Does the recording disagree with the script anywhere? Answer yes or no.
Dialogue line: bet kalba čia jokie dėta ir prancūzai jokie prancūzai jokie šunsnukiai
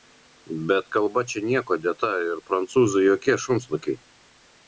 yes